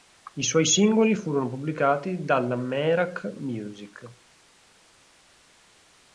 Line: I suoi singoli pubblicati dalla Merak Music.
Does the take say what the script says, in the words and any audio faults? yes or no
no